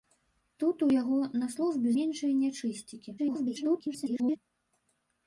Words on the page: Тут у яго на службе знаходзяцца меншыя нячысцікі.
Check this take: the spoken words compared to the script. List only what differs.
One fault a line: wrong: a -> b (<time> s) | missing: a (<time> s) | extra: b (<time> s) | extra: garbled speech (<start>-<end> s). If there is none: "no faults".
missing: знаходзяцца (1.9 s)
extra: garbled speech (3.2-4.4 s)